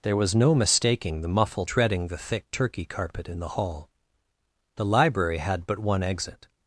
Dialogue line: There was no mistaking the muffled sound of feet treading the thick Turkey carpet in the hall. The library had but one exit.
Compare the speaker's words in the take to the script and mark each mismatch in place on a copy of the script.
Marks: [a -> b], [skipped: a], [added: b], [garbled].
There was no mistaking the muffled [skipped: sound of feet] treading the thick Turkey carpet in the hall. The library had but one exit.